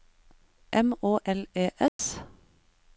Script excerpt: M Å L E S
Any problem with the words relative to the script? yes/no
no